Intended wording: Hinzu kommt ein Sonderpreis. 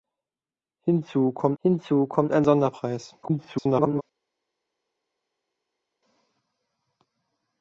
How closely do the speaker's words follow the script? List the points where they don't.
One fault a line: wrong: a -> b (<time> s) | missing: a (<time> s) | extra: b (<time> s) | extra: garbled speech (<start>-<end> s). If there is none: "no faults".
extra: hinzu kommt (1.6 s)
extra: garbled speech (3.2-4.0 s)